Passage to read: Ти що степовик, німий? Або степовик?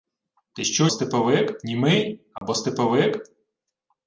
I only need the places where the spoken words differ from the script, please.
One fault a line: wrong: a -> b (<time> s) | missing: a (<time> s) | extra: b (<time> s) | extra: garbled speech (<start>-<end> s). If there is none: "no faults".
no faults